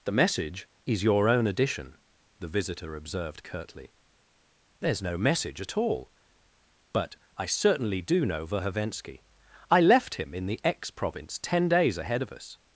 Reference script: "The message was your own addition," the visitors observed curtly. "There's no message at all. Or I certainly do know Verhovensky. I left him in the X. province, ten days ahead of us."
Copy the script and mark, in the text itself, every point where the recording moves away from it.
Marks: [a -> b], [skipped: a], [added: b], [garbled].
"The message [was -> is] your own addition," the [visitors -> visitor] observed curtly. "There's no message at all. [Or -> But] I certainly do know Verhovensky. I left him in the X. province, ten days ahead of us."